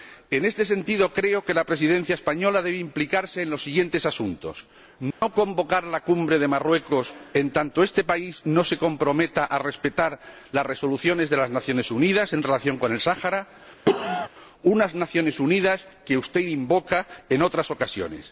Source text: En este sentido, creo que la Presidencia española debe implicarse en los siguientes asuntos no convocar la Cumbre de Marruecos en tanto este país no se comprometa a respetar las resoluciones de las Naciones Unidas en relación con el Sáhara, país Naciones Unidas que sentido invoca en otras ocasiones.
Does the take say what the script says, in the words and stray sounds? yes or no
no